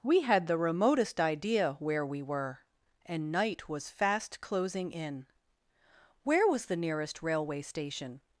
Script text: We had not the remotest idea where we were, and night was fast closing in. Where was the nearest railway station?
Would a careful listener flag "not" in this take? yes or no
yes